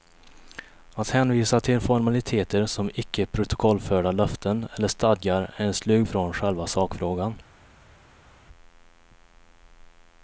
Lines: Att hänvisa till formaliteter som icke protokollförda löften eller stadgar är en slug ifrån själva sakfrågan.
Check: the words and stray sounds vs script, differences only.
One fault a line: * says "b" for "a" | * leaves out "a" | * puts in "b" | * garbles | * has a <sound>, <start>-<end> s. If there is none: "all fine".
all fine